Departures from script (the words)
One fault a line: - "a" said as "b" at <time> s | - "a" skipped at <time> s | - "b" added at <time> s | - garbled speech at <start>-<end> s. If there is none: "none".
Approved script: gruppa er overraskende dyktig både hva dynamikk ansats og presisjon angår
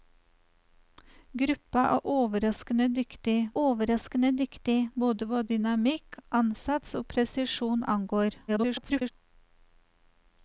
- "overraskende dyktig" added at 3.6 s
- garbled speech at 8.5-9.1 s